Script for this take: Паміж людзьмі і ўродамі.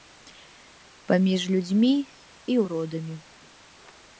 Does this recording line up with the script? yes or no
yes